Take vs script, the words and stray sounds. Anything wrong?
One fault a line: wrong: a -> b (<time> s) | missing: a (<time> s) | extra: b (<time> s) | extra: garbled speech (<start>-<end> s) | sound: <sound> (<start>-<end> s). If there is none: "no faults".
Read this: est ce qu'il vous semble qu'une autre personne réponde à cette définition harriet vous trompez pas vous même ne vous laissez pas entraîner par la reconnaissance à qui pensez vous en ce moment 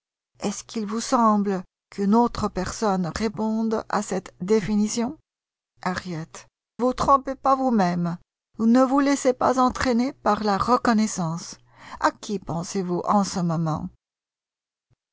no faults